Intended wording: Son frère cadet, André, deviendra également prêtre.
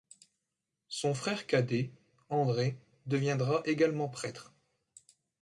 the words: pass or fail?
pass